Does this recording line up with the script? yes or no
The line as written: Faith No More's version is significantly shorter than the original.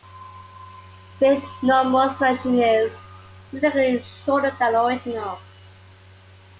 yes